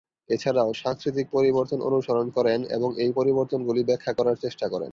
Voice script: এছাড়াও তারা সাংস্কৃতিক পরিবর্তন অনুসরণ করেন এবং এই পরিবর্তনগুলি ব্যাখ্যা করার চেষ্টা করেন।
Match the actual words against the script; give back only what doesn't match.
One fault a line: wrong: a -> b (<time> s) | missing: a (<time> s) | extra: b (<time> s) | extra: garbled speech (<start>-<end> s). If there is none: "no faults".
missing: তারা (0.7 s)